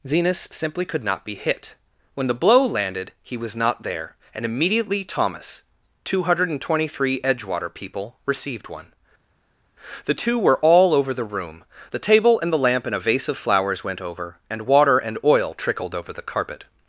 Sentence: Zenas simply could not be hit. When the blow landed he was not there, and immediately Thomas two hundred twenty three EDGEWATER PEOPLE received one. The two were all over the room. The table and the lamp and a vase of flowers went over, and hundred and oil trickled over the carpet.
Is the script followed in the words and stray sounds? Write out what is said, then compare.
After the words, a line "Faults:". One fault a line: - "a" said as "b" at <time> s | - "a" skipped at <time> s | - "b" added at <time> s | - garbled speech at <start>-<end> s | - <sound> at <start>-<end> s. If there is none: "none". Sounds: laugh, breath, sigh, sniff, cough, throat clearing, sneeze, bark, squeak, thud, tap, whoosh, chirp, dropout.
Zenas simply could not be hit. When the blow landed he was not there, and immediately Thomas two hundred twenty three EDGEWATER PEOPLE received one. The two were all over the room. The table and the lamp and a vase of flowers went over, and water and oil trickled over the carpet.
Faults:
- "hundred" said as "water" at 14.7 s